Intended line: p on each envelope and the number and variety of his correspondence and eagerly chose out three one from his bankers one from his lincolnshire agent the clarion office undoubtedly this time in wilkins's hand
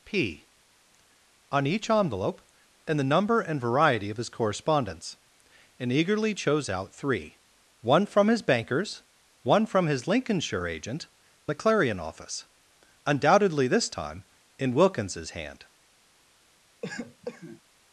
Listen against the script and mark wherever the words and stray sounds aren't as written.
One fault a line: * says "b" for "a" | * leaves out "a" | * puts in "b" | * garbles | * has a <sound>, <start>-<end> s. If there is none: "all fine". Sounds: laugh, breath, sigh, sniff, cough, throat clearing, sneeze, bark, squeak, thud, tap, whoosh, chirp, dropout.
* has a cough, 16.8-17.6 s